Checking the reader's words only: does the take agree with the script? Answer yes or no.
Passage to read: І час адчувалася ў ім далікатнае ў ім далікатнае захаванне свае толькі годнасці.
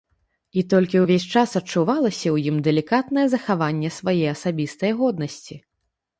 no